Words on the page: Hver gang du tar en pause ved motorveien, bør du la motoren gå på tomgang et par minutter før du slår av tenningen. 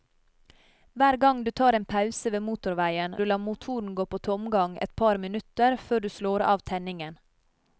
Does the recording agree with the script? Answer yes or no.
no